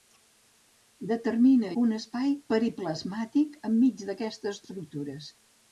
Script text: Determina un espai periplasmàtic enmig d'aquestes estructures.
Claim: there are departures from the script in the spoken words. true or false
false